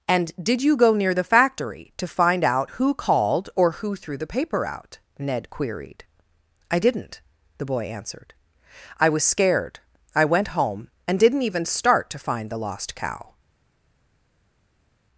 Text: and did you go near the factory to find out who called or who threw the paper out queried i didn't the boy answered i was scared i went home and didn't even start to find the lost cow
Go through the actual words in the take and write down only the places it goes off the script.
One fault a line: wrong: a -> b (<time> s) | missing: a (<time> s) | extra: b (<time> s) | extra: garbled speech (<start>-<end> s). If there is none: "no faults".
extra: ned (5.2 s)